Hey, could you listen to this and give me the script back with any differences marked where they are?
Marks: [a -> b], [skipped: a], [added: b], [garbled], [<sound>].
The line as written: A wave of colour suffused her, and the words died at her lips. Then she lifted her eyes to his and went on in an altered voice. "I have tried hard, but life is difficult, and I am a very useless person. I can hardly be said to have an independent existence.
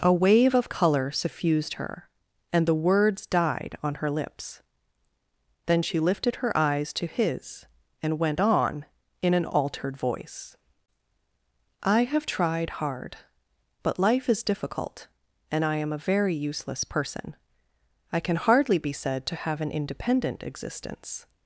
A wave of colour suffused her, and the words died [at -> on] her lips. Then she lifted her eyes to his and went on in an altered voice. "I have tried hard, but life is difficult, and I am a very useless person. I can hardly be said to have an independent existence.